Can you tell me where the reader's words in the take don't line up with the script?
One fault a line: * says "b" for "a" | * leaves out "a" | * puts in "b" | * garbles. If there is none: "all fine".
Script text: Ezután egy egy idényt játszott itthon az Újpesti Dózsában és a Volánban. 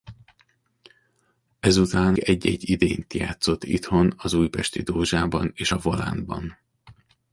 all fine